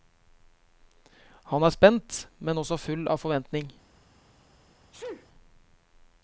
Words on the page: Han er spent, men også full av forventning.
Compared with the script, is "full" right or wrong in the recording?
right